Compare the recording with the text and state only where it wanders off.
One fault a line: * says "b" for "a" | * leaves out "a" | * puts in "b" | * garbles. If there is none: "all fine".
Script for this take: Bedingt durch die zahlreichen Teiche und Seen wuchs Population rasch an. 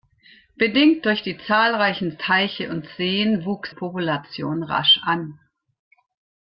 all fine